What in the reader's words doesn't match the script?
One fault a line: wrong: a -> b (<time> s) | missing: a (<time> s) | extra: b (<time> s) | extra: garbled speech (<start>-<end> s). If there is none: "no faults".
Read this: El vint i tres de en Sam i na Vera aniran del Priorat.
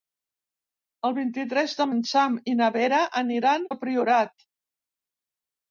no faults